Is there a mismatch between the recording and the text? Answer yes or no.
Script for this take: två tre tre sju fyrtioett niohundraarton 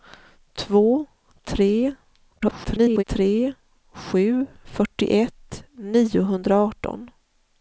yes